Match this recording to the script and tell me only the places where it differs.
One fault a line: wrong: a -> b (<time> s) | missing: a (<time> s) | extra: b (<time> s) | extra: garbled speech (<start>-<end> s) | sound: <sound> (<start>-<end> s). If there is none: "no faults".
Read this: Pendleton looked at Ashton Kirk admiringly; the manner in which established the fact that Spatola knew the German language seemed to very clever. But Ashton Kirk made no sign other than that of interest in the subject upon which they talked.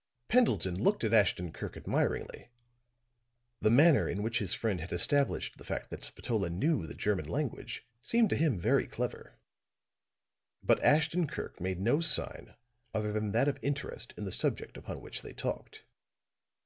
extra: his friend had (4.4 s)
extra: him (8.3 s)